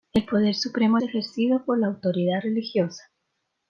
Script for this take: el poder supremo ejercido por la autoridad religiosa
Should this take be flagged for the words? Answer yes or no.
no